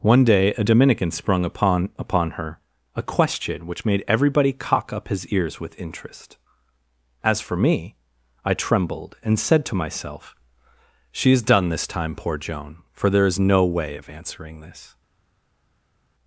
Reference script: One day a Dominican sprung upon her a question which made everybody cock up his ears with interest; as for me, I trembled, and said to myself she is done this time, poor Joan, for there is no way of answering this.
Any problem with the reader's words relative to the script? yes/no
yes